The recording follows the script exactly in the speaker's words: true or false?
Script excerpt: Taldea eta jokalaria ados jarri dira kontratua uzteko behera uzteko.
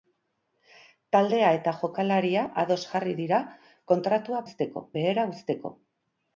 true